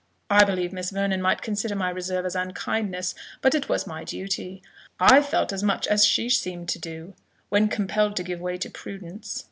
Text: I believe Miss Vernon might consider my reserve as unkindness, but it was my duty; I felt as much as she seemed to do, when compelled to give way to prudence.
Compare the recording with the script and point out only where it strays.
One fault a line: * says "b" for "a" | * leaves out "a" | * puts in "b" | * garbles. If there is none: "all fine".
all fine